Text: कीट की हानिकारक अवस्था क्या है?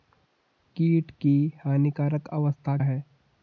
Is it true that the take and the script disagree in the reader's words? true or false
true